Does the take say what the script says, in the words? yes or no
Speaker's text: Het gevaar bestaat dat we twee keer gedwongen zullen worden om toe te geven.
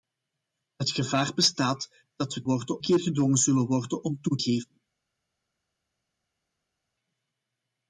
no